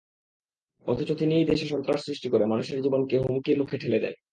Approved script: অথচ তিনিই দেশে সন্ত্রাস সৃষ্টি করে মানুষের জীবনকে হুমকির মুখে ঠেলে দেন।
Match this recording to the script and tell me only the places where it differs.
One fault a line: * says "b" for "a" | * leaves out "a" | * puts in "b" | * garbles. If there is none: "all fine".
all fine